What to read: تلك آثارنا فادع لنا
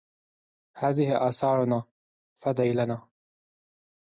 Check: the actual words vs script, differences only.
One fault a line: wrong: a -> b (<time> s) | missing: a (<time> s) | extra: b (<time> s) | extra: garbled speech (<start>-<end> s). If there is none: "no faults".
wrong: تلك -> هذه (0.8 s)